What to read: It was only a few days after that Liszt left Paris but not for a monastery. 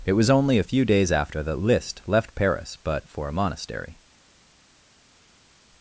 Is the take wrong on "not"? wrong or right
wrong